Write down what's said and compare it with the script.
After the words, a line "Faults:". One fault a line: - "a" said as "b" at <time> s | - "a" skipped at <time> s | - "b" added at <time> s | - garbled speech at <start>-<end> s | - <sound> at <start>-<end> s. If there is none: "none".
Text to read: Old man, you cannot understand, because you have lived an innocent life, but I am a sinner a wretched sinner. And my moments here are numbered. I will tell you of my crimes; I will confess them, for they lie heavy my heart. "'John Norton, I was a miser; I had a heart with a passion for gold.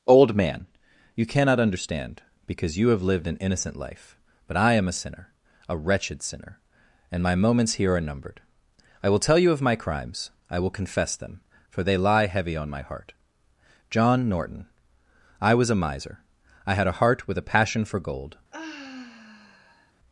Old man, you cannot understand, because you have lived an innocent life, but I am a sinner a wretched sinner. And my moments here are numbered. I will tell you of my crimes; I will confess them, for they lie heavy on my heart. "'John Norton, I was a miser; I had a heart with a passion for gold.
Faults:
- "on" added at 12.6 s
- sigh at 18.5-19.9 s